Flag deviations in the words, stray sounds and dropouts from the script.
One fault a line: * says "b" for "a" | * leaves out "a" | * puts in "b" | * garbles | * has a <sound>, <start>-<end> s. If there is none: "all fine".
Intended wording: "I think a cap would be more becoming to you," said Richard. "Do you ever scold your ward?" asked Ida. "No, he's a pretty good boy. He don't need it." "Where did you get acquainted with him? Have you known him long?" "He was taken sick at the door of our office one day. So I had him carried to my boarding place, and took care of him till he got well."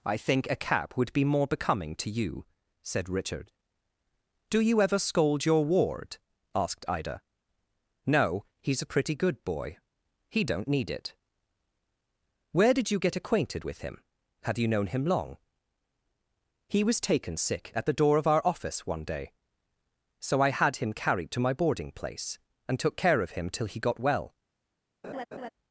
* has a laugh, 25.0-25.5 s